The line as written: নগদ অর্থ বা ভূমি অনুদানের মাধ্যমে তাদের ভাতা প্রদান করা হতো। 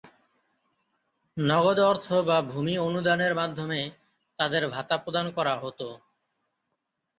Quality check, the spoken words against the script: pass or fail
pass